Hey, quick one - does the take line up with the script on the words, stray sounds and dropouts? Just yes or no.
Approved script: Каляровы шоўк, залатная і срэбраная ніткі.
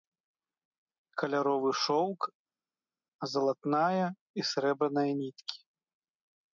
yes